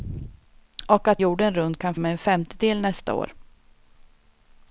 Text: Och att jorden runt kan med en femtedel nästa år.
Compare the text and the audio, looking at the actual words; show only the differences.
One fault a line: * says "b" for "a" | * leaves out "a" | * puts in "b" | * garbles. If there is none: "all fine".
all fine